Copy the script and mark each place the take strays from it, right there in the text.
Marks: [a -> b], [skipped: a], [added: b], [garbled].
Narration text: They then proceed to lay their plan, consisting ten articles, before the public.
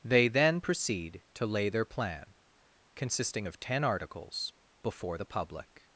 They then proceed to lay their plan, consisting [added: of] ten articles, before the public.